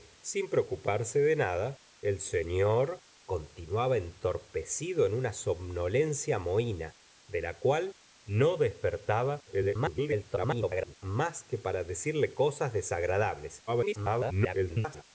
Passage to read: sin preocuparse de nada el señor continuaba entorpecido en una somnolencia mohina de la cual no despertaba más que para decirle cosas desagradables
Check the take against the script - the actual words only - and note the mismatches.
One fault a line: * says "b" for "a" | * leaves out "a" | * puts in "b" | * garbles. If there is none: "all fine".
* garbles
* garbles